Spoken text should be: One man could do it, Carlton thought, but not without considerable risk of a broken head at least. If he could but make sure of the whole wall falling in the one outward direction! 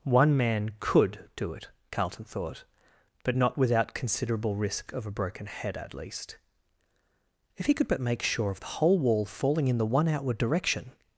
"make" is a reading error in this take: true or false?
false